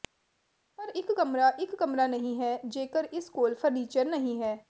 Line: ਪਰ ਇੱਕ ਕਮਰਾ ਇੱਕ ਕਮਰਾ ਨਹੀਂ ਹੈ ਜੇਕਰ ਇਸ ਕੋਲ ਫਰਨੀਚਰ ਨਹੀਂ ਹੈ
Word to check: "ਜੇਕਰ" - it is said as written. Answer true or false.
true